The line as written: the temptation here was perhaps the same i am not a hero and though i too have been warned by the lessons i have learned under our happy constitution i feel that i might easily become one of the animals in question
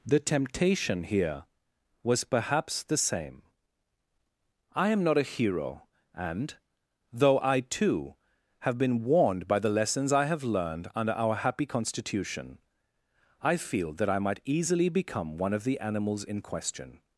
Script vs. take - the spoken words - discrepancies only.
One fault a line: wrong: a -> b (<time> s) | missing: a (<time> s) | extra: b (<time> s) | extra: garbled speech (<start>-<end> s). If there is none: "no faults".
no faults